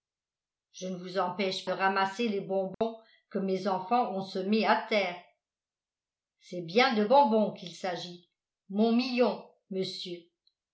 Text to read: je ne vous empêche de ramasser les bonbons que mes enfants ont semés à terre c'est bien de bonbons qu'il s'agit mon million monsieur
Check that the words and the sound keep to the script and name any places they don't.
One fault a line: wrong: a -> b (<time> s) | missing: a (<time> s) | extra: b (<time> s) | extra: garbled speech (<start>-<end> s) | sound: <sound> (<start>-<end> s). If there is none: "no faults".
sound: dropout (2.7-2.8 s)